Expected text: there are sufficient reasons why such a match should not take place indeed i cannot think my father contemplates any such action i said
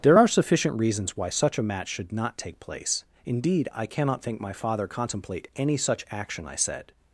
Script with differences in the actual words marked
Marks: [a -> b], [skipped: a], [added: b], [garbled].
there are sufficient reasons why such a match should not take place indeed i cannot think my father [contemplates -> contemplate] any such action i said